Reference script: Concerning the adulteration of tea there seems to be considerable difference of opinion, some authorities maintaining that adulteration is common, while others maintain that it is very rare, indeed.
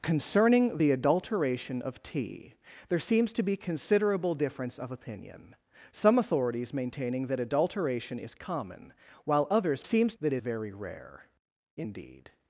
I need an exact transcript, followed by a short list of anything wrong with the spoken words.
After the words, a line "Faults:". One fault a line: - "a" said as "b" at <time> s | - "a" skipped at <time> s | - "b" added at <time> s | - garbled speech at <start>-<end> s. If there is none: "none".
Concerning the adulteration of tea there seems to be considerable difference of opinion, some authorities maintaining that adulteration is common, while others seems that it very rare, indeed.
Faults:
- "maintain" said as "seems" at 9.8 s
- "is" skipped at 10.4 s